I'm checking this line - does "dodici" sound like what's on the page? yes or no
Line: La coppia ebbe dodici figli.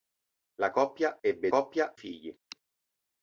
no